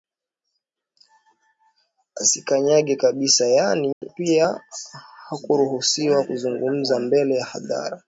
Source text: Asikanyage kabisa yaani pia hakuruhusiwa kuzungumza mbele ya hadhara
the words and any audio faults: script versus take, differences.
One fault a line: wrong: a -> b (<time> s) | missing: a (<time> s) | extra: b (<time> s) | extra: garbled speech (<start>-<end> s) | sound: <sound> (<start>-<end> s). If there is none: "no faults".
sound: dropout (3.9-4.0 s)